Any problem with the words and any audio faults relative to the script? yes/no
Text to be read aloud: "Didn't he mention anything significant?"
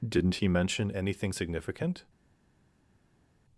no